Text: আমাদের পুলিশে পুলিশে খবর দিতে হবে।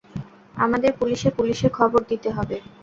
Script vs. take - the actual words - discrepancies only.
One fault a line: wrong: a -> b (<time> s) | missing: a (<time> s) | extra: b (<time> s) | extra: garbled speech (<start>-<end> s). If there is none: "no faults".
no faults